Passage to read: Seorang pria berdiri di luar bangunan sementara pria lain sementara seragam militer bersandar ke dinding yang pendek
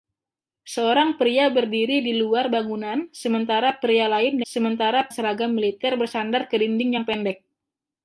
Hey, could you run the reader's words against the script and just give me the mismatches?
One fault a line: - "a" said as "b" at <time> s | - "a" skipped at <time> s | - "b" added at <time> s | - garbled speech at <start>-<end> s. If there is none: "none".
none